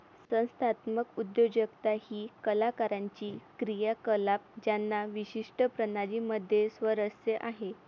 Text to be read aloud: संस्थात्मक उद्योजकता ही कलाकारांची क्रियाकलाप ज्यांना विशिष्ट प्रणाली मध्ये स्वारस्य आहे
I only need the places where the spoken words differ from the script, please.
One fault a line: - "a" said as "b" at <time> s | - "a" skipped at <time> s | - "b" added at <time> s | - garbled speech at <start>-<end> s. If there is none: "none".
none